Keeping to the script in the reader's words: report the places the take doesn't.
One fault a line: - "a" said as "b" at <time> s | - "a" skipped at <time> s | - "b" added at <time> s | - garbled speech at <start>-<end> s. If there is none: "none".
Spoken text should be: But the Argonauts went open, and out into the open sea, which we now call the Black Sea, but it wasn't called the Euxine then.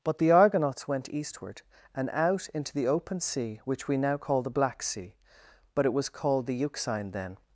- "open" said as "eastward" at 1.1 s
- "wasn't" said as "was" at 5.9 s